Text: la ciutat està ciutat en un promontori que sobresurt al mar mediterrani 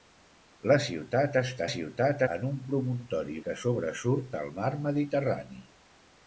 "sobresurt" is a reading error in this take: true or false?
false